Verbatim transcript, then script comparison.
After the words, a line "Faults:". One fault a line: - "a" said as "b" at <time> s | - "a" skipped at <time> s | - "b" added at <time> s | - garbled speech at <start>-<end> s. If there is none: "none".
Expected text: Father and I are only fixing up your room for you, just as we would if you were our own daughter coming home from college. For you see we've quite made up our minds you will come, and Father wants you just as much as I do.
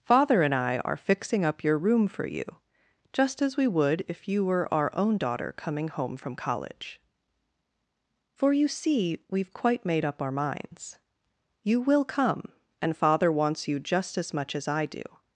Father and I are fixing up your room for you, just as we would if you were our own daughter coming home from college. For you see we've quite made up our minds you will come, and Father wants you just as much as I do.
Faults:
- "only" skipped at 1.0 s